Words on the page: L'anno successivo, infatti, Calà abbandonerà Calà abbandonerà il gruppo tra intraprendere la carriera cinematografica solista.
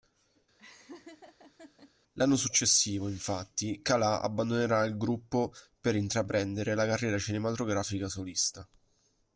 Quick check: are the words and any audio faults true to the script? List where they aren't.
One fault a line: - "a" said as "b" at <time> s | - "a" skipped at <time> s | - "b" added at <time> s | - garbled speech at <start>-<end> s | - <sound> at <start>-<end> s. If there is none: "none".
- laugh at 0.6-1.9 s
- "Calà abbandonerà" skipped at 4.8 s
- "tra" said as "per" at 5.8 s